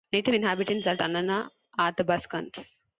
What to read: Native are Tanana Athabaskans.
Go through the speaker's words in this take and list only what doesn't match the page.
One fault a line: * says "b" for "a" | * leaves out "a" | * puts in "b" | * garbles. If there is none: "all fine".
* puts in "inhabitants"